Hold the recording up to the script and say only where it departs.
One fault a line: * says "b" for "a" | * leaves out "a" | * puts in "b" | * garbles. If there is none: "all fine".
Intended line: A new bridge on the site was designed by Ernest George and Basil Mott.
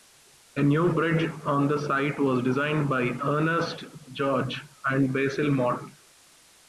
all fine